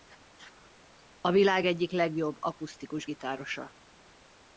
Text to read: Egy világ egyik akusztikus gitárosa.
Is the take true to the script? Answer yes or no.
no